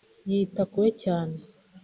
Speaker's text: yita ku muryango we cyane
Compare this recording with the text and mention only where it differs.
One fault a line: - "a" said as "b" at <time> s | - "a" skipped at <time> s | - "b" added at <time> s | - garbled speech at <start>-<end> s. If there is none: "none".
- "muryango" skipped at 0.8 s